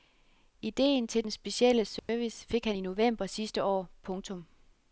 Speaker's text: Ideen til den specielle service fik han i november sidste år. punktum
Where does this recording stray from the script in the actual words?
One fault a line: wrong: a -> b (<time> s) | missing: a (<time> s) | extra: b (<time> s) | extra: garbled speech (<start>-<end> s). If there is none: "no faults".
no faults